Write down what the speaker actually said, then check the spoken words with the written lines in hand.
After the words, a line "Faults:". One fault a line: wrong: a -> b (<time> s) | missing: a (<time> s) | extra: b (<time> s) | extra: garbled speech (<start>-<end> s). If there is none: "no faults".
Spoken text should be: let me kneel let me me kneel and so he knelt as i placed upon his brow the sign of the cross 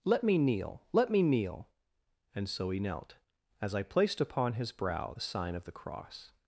let me kneel let me kneel and so he knelt as i placed upon his brow the sign of the cross
Faults:
missing: me (1.2 s)